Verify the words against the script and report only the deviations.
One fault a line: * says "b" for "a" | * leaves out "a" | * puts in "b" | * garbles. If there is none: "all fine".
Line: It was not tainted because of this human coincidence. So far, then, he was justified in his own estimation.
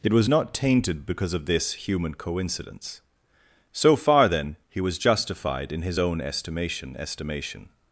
* puts in "estimation"